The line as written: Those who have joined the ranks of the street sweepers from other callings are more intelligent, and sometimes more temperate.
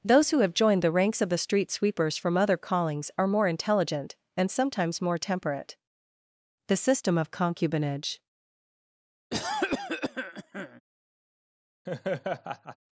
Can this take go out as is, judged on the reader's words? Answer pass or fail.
fail